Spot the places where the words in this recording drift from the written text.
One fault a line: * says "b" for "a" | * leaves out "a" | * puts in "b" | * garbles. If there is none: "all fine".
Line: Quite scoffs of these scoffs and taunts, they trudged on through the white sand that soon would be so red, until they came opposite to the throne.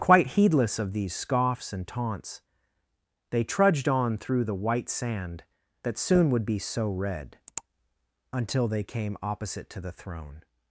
* says "heedless" for "scoffs"